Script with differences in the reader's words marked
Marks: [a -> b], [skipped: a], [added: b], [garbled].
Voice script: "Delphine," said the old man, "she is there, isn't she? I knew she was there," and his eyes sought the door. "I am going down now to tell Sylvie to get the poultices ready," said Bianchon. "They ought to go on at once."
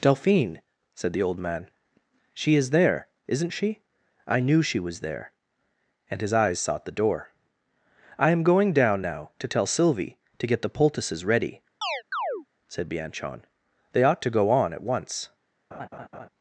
"Delphine," said the old man, "she is there, isn't she? I knew she was there," and his eyes sought the door. "I am going down now to tell Sylvie to get the poultices ready," said Bianchon. "They ought to go on at once."